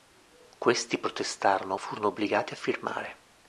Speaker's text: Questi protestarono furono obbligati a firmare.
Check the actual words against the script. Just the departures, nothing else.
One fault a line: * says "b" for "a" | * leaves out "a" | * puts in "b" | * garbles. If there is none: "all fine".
all fine